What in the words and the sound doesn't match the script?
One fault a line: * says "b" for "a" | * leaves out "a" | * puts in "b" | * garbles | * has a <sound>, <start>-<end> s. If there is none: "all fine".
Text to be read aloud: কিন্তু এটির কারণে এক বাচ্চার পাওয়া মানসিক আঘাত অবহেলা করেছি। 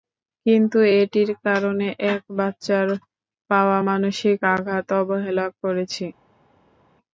all fine